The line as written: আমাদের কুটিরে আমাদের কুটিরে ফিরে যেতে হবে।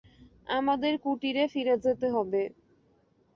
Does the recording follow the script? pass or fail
fail